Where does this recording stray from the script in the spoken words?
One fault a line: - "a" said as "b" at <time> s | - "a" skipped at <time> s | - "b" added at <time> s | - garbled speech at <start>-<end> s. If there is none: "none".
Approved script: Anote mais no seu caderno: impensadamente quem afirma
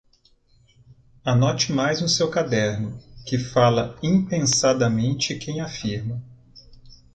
- "que fala" added at 3.2 s